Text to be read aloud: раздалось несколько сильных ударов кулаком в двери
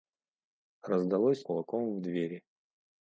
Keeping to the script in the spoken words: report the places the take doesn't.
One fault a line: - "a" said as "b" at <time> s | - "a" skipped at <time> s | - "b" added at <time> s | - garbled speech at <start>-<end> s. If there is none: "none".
- "несколько сильных ударов" skipped at 1.4 s